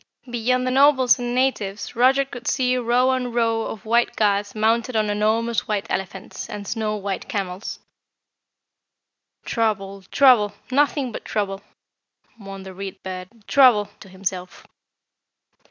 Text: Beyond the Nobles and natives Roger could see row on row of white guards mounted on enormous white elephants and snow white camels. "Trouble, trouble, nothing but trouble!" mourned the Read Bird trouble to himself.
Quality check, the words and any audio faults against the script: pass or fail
pass